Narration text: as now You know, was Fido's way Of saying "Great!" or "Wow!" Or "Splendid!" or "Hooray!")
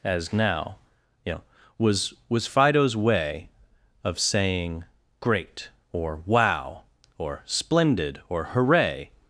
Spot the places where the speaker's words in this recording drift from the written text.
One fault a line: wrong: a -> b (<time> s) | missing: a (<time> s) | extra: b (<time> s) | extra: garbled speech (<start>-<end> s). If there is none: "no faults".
extra: was (2.3 s)